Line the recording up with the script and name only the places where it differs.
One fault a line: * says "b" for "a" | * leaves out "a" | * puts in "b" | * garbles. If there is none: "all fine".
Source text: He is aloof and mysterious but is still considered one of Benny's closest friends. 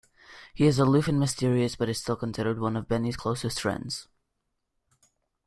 all fine